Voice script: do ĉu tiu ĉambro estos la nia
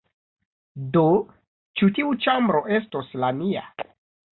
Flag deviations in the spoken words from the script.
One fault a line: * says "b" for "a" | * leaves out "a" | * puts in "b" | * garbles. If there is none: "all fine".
all fine